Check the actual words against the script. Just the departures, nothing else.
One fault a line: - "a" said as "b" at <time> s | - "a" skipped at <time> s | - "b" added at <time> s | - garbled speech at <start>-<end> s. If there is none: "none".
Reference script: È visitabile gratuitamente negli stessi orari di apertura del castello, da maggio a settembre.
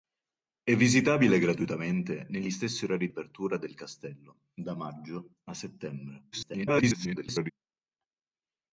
- "di" skipped at 3.1 s
- garbled speech at 6.3-7.5 s